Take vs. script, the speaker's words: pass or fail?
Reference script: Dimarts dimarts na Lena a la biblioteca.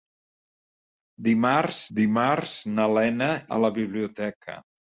pass